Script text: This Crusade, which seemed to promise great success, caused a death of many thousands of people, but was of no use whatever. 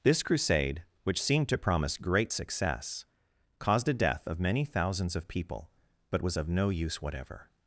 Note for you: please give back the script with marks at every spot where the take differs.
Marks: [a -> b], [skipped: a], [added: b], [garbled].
This Crusade, which seemed to promise great success, caused a death of many thousands of people, but was of no use whatever.